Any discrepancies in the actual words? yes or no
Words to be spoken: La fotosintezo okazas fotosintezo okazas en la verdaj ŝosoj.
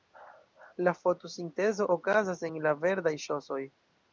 yes